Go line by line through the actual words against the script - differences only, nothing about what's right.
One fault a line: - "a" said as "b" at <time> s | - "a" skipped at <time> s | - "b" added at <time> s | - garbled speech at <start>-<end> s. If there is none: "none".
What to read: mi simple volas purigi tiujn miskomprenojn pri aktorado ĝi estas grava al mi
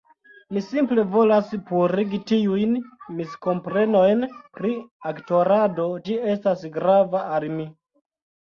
none